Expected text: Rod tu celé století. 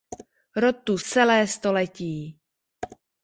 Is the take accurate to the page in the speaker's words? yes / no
yes